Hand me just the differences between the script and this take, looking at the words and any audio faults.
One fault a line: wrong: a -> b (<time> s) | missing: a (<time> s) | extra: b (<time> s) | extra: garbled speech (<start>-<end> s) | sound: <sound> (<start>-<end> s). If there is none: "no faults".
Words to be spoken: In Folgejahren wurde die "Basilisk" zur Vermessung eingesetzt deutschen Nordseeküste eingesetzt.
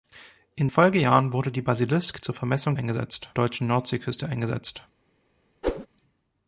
sound: whoosh (5.6-5.9 s)